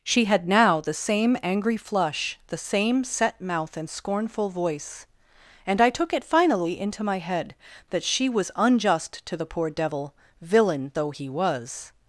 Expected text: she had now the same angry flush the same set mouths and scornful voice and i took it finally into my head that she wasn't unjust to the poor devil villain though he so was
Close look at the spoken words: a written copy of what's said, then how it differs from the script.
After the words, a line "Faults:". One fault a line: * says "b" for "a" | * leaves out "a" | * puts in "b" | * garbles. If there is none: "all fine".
she had now the same angry flush the same set mouth and scornful voice and i took it finally into my head that she was unjust to the poor devil villain though he was
Faults:
* says "mouth" for "mouths"
* says "was" for "wasn't"
* leaves out "so"